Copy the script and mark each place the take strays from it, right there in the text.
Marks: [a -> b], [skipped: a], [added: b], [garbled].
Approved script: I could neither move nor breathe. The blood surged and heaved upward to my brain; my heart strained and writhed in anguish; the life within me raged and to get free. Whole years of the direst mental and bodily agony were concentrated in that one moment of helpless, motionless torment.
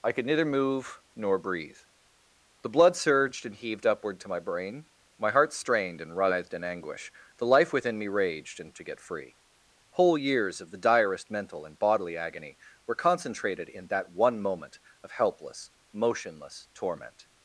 I could neither move nor breathe. The blood surged and heaved upward to my brain; my heart strained and writhed in anguish; the life within me raged and to get free. Whole years of the direst mental and bodily agony were concentrated in that one moment of helpless, motionless torment.